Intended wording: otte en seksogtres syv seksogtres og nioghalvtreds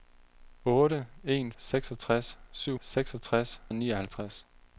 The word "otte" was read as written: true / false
true